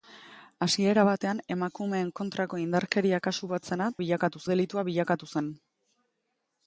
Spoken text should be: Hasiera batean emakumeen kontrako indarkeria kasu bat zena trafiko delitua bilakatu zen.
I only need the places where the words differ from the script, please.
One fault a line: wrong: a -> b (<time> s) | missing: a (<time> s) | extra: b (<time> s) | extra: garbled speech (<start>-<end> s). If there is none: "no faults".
wrong: trafiko -> bilakatu (4.0 s)